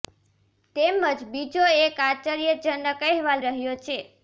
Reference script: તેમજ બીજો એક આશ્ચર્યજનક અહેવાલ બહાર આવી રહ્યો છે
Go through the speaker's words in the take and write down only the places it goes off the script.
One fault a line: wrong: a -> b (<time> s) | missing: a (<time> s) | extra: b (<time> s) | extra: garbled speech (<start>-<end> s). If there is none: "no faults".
missing: બહાર આવી (3.4 s)